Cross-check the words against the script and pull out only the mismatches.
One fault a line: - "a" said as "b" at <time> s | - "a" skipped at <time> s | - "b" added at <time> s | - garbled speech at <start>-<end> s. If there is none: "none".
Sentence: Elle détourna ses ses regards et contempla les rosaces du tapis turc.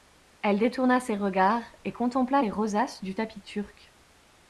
- "ses" skipped at 1.1 s